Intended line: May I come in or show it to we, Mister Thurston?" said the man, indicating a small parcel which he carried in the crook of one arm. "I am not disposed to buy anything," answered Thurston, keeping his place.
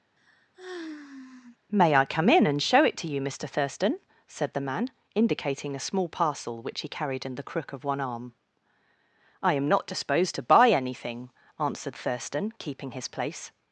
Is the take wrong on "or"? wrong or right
wrong